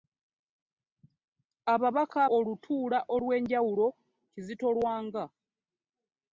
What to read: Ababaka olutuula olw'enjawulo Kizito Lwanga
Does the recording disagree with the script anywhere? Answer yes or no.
no